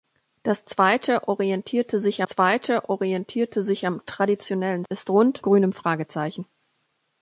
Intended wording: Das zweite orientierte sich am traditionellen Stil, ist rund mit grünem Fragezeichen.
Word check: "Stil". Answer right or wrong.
wrong